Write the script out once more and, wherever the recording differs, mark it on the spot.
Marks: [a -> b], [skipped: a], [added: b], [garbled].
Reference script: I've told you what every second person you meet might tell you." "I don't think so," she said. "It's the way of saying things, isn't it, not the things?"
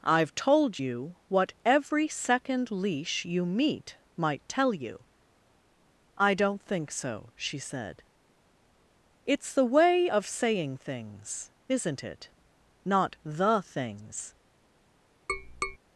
I've told you what every second [person -> leash] you meet might tell you." "I don't think so," she said. "It's the way of saying things, isn't it, not the things?"